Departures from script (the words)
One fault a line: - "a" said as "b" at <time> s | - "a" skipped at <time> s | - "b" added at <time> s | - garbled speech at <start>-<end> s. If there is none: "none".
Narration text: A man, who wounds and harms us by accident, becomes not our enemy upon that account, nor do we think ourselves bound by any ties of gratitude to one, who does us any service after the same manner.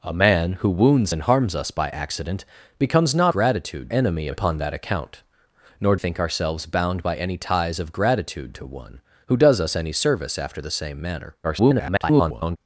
- "our" said as "gratitude" at 3.3 s
- "do we" skipped at 6.0 s
- garbled speech at 11.4-12.6 s